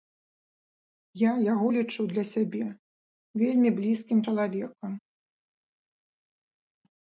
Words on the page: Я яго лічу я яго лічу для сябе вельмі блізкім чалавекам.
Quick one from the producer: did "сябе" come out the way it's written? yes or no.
yes